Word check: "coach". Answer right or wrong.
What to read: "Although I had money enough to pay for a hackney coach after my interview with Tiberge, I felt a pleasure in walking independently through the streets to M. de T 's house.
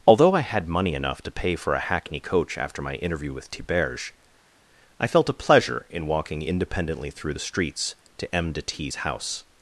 right